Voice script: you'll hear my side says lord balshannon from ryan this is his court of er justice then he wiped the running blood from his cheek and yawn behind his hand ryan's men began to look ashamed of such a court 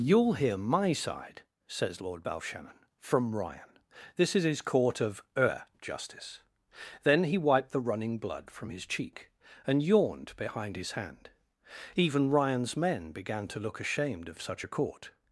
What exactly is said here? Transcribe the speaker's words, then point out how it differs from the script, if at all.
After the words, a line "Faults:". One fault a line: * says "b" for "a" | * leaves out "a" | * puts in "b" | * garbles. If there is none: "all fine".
you'll hear my side says lord balshannon from ryan this is his court of er justice then he wiped the running blood from his cheek and yawned behind his hand even ryan's men began to look ashamed of such a court
Faults:
* says "yawned" for "yawn"
* puts in "even"